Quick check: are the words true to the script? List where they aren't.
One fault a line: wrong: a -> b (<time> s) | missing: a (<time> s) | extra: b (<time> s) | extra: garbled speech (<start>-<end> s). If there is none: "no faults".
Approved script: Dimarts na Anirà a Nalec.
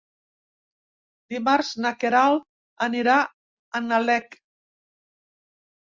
extra: Queralt (2.0 s)